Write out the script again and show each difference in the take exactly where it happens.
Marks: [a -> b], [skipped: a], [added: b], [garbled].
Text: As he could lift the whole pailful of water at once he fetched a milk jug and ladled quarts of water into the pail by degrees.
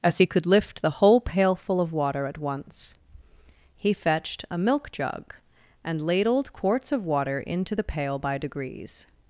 As he could lift the whole pailful of water at once he fetched a milk jug and ladled quarts of water into the pail by degrees.